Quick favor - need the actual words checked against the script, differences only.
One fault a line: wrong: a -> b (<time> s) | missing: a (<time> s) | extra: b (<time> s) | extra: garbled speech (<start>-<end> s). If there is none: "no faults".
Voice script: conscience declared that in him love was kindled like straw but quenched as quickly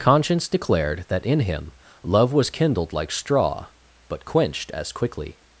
no faults